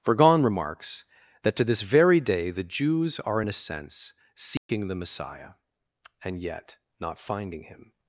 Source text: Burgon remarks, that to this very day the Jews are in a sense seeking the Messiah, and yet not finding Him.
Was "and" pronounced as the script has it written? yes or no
yes